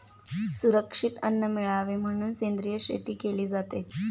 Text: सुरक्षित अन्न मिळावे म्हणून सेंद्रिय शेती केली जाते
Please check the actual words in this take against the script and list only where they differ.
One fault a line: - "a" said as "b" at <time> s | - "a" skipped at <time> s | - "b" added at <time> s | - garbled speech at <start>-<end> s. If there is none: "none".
none